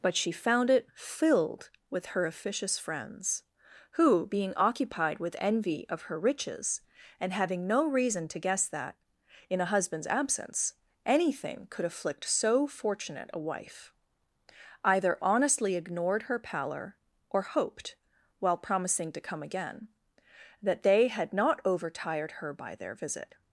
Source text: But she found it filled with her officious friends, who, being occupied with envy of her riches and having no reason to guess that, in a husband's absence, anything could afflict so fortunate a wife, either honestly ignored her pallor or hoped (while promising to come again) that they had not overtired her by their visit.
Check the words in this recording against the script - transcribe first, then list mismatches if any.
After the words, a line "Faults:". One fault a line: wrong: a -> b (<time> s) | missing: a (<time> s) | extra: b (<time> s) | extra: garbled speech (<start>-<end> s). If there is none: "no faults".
But she found it filled with her officious friends, who, being occupied with envy of her riches and having no reason to guess that, in a husband's absence, anything could afflict so fortunate a wife, either honestly ignored her pallor or hoped (while promising to come again) that they had not overtired her by their visit.
Faults:
no faults